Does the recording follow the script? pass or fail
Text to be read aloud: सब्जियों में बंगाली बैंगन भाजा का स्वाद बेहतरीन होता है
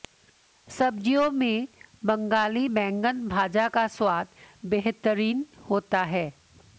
pass